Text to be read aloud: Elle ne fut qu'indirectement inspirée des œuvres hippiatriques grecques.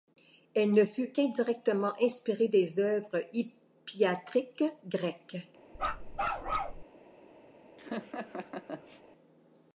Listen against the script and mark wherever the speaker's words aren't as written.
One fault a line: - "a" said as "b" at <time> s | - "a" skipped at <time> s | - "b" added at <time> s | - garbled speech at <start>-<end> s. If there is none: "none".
none